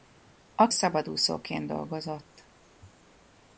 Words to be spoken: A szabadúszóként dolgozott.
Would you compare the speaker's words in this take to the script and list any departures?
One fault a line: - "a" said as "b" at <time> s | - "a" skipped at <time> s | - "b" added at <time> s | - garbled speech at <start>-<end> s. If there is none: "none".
none